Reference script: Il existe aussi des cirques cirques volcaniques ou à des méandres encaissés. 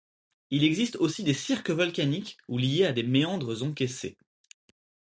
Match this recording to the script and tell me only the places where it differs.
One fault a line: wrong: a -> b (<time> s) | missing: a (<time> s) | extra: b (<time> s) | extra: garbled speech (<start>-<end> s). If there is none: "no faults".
missing: cirques (1.7 s)
extra: liés (2.6 s)